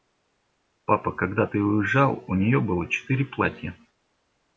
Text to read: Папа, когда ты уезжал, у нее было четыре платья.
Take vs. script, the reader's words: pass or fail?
pass